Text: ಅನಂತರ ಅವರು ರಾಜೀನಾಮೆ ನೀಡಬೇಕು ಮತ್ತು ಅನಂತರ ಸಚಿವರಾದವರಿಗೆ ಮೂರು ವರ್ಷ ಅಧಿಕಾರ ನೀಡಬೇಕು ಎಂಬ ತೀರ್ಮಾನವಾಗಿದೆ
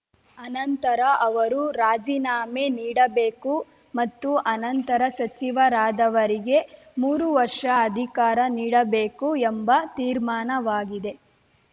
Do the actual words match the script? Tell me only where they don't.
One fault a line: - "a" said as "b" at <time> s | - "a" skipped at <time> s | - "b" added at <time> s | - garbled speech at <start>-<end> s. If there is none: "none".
none